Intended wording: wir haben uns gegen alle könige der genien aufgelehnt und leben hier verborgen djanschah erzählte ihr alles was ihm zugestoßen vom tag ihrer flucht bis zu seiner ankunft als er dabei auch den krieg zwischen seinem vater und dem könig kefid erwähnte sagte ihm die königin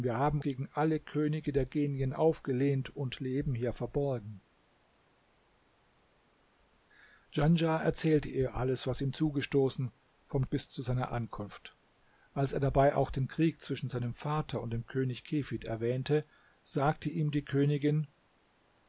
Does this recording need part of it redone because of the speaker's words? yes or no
yes